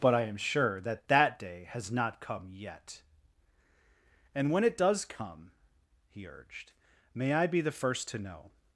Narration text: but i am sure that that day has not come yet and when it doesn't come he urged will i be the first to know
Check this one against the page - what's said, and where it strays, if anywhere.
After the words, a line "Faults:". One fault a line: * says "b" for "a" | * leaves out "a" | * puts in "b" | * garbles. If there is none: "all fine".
but i am sure that that day has not come yet and when it does come he urged may i be the first to know
Faults:
* says "does" for "doesn't"
* says "may" for "will"